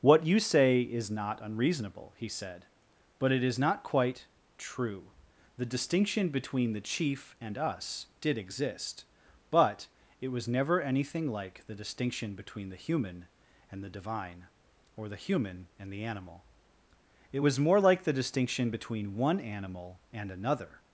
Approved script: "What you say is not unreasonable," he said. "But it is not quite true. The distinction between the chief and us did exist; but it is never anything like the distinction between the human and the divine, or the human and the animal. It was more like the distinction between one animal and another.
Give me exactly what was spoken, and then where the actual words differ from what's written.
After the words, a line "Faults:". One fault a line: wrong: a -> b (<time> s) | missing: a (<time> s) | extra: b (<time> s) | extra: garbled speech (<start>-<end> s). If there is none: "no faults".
"What you say is not unreasonable," he said. "But it is not quite true. The distinction between the chief and us did exist; but it was never anything like the distinction between the human and the divine, or the human and the animal. It was more like the distinction between one animal and another.
Faults:
wrong: is -> was (10.3 s)